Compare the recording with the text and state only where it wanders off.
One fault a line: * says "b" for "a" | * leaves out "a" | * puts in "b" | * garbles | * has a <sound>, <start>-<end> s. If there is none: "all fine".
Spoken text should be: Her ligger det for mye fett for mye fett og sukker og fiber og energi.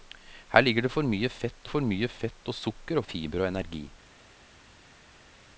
all fine